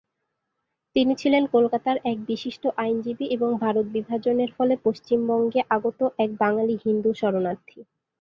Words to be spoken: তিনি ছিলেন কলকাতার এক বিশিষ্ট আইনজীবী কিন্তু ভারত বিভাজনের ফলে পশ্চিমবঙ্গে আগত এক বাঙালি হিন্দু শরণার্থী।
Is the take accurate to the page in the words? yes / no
no